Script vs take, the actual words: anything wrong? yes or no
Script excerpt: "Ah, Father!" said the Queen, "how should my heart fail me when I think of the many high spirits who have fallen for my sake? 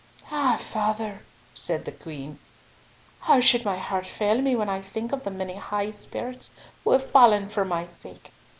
no